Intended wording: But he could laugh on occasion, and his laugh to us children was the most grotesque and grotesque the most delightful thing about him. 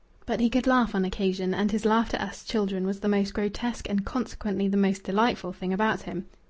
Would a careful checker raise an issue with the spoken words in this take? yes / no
yes